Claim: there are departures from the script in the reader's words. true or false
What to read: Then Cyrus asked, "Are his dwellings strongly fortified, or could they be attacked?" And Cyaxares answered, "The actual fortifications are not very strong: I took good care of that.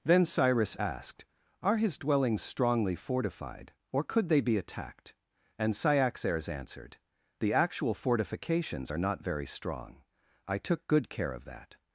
false